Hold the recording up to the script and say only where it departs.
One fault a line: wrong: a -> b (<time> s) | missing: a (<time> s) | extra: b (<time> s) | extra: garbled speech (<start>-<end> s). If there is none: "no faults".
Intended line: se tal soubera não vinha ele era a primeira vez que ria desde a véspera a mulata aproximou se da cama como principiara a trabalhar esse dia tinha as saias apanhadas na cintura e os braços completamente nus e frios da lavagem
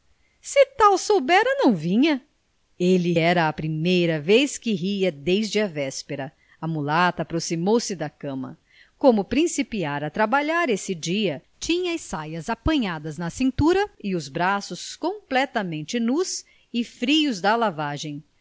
no faults